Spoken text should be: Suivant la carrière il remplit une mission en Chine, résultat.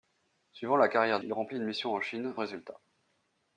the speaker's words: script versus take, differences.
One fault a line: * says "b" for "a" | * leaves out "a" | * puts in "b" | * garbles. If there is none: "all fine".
all fine